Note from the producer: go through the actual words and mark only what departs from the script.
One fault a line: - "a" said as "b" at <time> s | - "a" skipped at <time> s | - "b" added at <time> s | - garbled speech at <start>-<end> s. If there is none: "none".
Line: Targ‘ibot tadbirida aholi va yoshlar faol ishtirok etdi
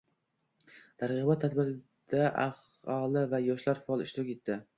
none